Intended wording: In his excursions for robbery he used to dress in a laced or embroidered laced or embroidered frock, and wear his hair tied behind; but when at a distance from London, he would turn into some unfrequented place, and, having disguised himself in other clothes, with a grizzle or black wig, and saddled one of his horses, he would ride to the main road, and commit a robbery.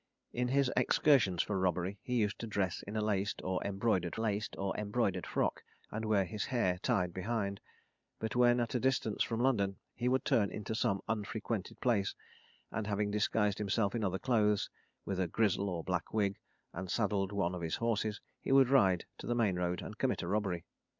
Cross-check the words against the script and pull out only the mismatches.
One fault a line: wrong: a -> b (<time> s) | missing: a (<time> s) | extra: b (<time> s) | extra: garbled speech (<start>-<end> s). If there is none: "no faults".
no faults